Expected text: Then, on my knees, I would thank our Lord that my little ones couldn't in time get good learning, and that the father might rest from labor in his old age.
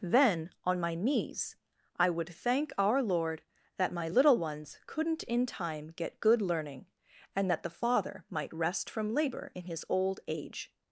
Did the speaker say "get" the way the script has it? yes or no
yes